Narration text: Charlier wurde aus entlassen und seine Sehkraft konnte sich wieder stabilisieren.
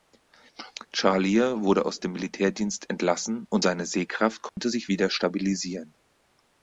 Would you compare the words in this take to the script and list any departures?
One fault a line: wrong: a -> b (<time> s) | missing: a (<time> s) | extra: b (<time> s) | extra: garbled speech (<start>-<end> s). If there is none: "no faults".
extra: dem Militärdienst (2.0 s)